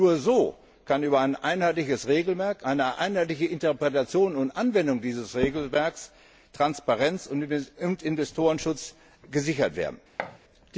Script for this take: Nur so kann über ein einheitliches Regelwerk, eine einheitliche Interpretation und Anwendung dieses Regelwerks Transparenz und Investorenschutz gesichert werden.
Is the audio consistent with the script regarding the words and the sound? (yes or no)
no